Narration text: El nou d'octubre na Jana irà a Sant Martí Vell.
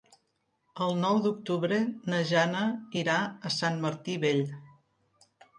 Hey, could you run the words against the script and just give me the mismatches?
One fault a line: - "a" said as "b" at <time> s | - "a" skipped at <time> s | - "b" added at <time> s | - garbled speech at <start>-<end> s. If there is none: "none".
none